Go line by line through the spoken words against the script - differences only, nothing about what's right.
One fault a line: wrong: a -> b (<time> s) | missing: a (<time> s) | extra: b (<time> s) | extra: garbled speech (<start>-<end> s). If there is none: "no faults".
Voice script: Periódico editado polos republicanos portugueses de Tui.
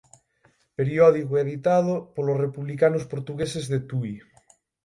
no faults